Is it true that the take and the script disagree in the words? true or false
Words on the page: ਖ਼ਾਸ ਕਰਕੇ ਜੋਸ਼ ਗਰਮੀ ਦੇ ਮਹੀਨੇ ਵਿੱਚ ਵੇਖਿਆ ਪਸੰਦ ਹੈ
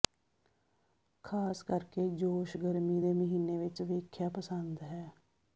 false